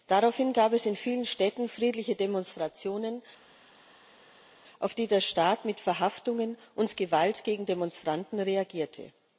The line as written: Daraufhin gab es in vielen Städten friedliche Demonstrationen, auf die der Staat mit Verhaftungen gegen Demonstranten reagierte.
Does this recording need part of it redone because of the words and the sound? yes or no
yes